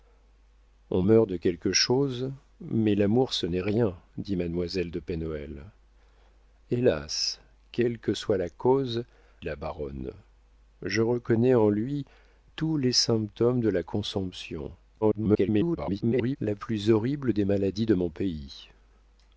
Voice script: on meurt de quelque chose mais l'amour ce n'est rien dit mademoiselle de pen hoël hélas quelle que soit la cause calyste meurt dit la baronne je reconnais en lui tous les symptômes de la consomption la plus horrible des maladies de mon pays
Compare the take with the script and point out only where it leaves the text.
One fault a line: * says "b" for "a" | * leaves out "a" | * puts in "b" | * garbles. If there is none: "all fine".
* leaves out "calyste meurt dit"
* garbles